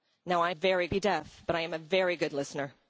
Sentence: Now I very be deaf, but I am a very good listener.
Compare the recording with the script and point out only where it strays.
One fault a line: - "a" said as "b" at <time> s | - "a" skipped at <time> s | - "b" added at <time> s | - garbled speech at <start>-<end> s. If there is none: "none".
none